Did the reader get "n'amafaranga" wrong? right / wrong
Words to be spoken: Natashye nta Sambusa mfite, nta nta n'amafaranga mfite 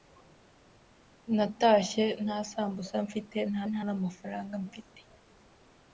right